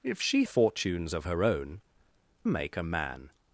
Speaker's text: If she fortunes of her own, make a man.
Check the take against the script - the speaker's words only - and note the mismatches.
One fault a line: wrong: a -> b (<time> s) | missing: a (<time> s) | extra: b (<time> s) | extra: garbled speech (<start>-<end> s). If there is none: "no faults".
no faults